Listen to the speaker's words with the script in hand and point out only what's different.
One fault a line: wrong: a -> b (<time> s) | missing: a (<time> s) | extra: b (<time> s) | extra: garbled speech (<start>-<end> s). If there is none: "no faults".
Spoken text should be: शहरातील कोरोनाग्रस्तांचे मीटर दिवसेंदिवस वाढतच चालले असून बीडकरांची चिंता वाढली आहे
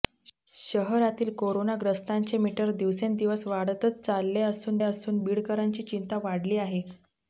extra: असून (4.8 s)